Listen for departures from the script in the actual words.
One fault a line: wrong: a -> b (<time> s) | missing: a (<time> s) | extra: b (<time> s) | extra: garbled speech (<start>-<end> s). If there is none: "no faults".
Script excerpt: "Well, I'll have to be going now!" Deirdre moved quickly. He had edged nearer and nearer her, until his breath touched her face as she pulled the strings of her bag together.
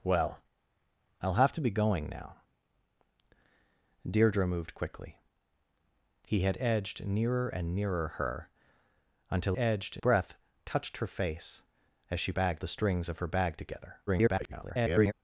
wrong: his -> edged (9.6 s)
wrong: pulled -> bag (12.3 s)
extra: garbled speech (14.1-15.1 s)